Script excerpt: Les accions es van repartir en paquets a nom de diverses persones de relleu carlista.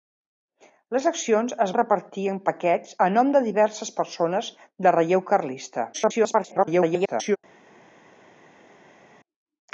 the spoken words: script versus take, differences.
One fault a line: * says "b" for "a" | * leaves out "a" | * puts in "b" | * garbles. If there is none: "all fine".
* leaves out "van"
* garbles